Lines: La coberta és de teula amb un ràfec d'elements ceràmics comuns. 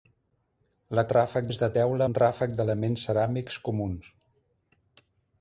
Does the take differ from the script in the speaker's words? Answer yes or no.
yes